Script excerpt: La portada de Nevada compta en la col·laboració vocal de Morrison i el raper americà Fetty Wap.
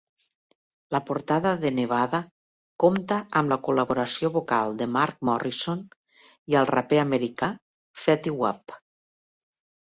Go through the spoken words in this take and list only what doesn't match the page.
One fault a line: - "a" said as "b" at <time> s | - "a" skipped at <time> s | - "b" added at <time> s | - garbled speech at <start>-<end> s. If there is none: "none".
- "en" said as "amb" at 3.4 s
- "Mark" added at 5.0 s